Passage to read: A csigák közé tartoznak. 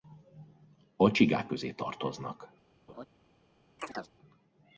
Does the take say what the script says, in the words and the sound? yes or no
no